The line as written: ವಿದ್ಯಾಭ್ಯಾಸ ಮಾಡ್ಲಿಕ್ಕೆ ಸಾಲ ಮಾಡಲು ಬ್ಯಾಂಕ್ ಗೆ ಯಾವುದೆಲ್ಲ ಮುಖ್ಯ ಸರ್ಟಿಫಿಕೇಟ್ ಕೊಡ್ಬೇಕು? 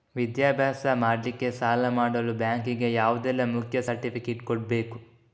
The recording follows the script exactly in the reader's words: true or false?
true